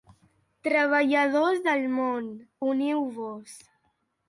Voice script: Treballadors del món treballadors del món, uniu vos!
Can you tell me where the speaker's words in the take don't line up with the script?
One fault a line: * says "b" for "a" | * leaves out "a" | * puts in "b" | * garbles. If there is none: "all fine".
* leaves out "treballadors del món"